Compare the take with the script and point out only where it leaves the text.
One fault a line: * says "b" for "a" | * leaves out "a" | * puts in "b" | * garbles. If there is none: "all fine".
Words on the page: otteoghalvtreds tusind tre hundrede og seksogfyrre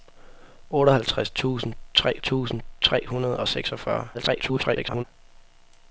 * puts in "tusind tre"
* garbles